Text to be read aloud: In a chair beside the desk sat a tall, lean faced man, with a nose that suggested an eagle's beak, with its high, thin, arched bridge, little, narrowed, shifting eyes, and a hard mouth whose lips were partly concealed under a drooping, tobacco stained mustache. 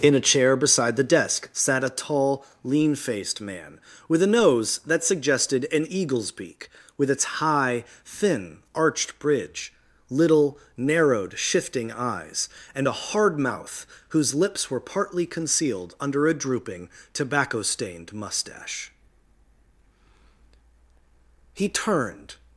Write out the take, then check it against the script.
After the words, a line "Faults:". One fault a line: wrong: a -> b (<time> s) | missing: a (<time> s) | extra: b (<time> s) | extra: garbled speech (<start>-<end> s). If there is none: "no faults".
In a chair beside the desk sat a tall, lean faced man, with a nose that suggested an eagle's beak, with its high, thin, arched bridge, little, narrowed, shifting eyes, and a hard mouth whose lips were partly concealed under a drooping, tobacco stained mustache. He turned
Faults:
extra: He turned (21.6 s)